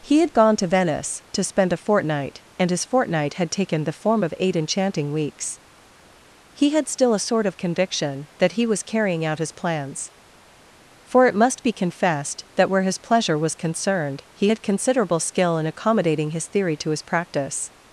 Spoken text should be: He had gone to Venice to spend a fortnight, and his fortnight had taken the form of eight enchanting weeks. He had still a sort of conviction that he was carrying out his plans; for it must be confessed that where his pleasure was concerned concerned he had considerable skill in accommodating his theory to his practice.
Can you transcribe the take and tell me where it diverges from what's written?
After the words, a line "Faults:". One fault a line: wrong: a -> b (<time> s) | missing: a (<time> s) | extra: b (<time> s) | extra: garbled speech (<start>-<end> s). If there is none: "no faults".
He had gone to Venice to spend a fortnight, and his fortnight had taken the form of eight enchanting weeks. He had still a sort of conviction that he was carrying out his plans; for it must be confessed that where his pleasure was concerned he had considerable skill in accommodating his theory to his practice.
Faults:
missing: concerned (14.2 s)